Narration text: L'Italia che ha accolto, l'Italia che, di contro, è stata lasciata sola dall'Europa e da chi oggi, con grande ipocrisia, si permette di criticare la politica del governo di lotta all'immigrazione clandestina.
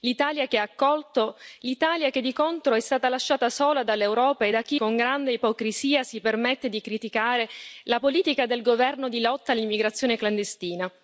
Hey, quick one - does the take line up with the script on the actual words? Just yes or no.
no